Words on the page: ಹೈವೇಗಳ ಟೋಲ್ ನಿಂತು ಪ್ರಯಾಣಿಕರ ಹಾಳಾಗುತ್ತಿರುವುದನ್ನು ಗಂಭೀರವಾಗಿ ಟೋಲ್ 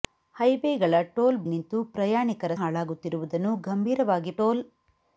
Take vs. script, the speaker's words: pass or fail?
pass